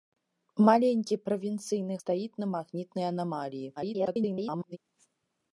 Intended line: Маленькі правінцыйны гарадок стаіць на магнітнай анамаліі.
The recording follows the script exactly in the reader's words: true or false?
false